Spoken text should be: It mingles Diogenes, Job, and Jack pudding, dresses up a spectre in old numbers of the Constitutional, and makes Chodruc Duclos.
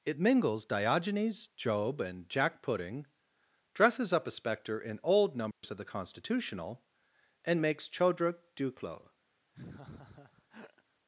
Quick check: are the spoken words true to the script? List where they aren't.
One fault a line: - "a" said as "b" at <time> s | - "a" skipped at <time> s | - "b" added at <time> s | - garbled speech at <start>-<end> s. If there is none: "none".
none